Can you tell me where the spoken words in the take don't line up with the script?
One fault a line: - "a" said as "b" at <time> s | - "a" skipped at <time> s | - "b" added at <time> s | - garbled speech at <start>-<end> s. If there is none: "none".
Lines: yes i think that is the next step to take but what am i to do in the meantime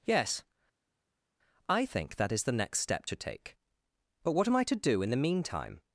none